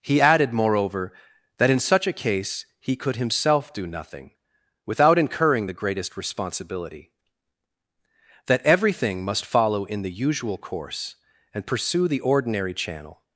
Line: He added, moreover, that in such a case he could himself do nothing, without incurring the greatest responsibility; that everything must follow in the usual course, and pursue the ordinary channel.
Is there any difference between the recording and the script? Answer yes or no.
no